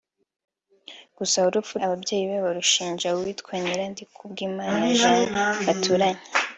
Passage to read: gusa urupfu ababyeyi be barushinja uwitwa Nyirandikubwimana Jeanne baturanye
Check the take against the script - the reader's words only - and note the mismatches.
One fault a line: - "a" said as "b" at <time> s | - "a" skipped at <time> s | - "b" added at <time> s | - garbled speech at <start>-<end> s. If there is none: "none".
none